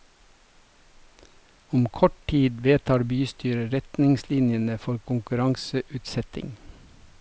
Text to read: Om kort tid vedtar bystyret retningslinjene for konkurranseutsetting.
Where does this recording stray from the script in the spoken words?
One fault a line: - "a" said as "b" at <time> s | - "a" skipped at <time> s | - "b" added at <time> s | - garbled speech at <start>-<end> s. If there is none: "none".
none